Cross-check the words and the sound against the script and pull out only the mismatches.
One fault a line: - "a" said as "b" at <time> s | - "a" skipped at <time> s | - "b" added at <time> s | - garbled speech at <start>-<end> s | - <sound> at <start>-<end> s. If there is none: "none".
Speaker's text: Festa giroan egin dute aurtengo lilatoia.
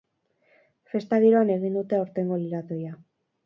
none